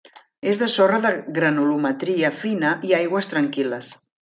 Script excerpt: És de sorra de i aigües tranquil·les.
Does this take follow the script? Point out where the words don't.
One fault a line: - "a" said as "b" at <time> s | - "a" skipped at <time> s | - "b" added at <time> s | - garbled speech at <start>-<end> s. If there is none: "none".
- "granulometria fina" added at 1.4 s